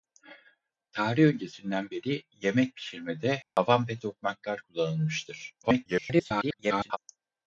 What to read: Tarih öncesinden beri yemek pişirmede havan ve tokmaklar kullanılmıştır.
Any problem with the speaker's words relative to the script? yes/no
yes